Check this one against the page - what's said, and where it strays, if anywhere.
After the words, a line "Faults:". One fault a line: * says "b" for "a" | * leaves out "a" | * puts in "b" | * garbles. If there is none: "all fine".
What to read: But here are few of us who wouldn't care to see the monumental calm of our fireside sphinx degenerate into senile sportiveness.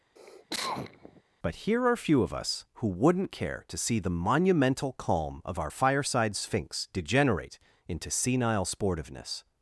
But here are few of us who wouldn't care to see the monumental calm of our fireside sphinx degenerate into senile sportiveness.
Faults:
all fine